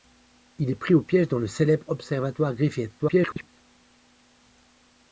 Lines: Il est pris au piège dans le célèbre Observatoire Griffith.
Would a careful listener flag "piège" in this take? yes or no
no